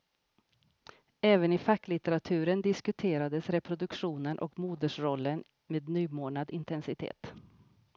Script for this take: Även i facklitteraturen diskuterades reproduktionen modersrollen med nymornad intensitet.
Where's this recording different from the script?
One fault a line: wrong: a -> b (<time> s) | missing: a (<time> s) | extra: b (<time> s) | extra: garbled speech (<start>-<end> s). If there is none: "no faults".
extra: och (4.4 s)